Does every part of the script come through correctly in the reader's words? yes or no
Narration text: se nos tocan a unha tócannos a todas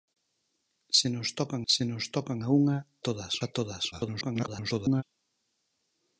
no